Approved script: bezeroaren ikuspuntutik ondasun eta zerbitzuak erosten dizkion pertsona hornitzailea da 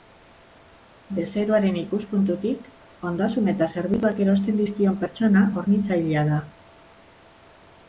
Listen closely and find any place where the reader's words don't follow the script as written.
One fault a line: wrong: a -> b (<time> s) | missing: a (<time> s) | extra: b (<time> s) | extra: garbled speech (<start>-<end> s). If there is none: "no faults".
no faults